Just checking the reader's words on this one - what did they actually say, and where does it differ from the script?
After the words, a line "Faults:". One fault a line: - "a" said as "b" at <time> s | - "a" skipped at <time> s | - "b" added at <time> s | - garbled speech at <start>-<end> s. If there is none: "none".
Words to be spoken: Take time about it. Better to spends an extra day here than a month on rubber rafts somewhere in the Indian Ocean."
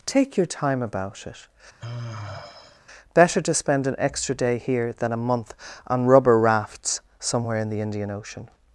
Take your time about it. Better to spend an extra day here than a month on rubber rafts somewhere in the Indian Ocean."
Faults:
- "your" added at 0.3 s
- "spends" said as "spend" at 3.5 s